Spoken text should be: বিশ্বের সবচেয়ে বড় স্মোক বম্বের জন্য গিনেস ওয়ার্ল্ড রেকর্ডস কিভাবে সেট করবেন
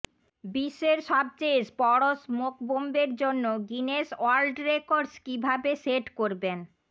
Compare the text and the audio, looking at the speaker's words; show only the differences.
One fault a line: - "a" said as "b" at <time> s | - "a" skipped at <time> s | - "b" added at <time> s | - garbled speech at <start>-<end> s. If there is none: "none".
none